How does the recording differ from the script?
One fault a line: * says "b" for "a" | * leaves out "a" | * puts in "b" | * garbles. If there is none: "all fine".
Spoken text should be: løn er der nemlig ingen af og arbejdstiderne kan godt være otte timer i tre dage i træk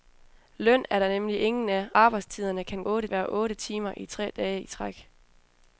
* leaves out "og"
* says "otte" for "godt"